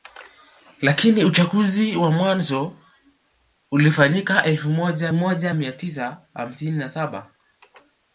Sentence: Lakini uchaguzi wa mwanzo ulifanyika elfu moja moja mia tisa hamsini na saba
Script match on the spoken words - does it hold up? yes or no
yes